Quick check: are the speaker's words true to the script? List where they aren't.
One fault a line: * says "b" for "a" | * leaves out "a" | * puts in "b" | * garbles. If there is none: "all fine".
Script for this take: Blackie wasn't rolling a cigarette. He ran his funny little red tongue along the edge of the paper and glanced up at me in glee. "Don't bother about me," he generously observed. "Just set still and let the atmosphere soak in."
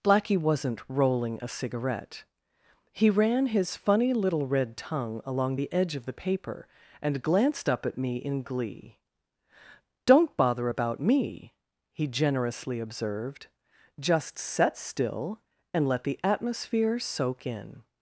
all fine